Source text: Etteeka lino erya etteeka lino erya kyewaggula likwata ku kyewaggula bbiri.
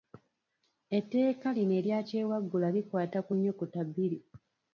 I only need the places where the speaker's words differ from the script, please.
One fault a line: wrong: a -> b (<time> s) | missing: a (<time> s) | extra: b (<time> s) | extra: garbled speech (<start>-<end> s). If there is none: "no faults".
missing: etteeka lino erya (2.0 s)
wrong: kyewaggula -> nnyukuta (3.4 s)